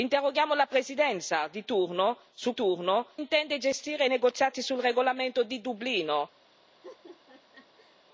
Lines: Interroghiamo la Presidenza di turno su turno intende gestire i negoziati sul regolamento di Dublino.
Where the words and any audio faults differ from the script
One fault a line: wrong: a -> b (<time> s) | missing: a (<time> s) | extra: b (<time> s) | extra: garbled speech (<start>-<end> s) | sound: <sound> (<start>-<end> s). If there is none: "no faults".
sound: laugh (6.8-8.0 s)